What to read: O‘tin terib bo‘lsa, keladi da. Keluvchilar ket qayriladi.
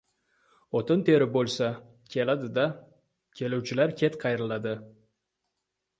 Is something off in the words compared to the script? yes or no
no